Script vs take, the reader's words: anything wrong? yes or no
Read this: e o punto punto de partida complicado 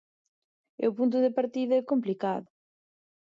yes